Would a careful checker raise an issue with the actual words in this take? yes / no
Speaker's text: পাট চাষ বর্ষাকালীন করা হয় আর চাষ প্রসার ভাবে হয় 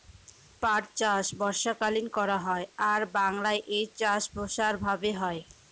yes